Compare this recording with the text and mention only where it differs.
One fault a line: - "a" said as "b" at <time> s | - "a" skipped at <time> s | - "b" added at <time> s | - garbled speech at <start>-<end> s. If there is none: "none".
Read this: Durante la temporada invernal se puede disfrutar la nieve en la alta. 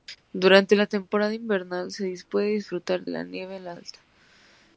none